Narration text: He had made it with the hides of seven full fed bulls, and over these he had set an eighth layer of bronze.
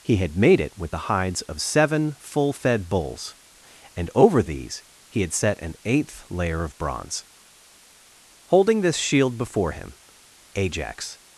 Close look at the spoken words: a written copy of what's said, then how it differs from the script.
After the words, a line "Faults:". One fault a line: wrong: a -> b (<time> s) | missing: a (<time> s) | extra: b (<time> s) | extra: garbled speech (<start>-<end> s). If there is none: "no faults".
He had made it with the hides of seven full fed bulls, and over these he had set an eighth layer of bronze. Holding this shield before him, Ajax
Faults:
extra: Holding this shield before him Ajax (8.5 s)